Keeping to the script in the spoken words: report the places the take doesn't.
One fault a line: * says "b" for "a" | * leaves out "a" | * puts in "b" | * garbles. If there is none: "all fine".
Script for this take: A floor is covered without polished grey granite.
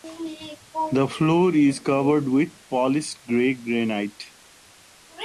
* says "The" for "A"
* says "with" for "without"